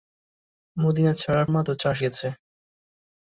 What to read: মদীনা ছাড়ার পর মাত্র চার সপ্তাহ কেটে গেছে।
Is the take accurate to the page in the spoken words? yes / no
no